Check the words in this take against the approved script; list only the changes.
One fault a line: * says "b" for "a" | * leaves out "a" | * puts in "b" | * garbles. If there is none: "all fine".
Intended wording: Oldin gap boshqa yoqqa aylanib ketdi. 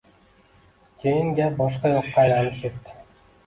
* says "Keyin" for "Oldin"